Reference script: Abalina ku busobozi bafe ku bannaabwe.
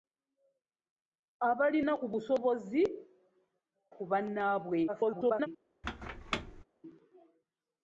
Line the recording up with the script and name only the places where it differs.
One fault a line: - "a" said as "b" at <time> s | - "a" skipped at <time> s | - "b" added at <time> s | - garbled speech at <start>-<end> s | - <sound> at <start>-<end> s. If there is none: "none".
- "bafe" skipped at 2.8 s
- garbled speech at 4.9-5.5 s
- squeak at 5.8-6.6 s